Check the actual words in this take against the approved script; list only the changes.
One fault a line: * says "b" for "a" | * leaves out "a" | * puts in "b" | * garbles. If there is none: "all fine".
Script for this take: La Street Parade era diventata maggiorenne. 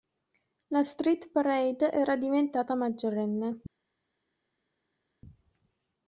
all fine